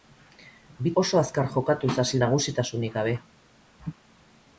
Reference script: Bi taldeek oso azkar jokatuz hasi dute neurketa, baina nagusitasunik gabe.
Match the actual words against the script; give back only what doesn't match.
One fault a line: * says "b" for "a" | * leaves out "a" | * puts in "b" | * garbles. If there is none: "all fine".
* leaves out "taldeek"
* leaves out "dute neurketa baina"